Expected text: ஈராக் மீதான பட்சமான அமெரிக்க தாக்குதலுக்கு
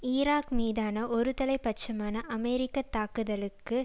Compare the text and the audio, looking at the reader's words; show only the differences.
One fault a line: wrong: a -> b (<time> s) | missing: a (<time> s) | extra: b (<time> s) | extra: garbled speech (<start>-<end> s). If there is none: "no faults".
extra: ஒருதலை (1.1 s)